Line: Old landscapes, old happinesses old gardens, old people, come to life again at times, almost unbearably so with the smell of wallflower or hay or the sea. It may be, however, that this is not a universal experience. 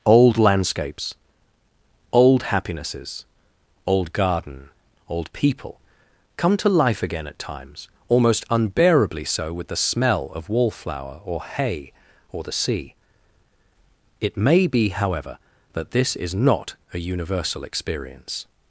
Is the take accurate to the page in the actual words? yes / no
no